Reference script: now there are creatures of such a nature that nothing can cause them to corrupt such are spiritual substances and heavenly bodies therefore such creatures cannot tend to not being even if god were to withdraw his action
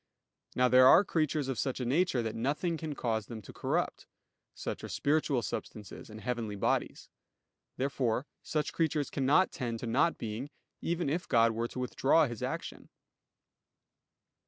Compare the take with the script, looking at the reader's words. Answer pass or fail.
pass